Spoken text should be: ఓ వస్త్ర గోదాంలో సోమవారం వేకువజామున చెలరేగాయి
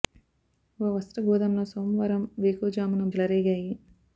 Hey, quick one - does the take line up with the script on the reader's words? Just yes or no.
yes